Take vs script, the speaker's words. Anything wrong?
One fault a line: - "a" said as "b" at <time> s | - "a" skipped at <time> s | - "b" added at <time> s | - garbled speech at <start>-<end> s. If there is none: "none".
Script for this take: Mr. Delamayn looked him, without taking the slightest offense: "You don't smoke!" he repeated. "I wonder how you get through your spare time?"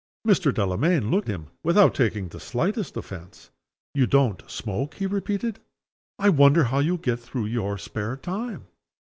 none